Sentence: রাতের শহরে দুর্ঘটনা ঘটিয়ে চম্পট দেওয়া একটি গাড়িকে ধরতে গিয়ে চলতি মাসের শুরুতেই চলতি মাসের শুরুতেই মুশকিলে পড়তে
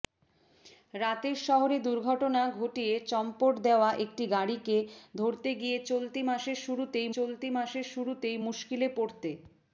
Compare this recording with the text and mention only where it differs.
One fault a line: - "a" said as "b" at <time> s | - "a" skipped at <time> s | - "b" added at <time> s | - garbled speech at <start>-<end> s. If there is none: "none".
none